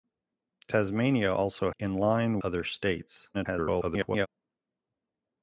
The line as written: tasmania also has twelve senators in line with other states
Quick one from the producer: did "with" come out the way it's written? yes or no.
no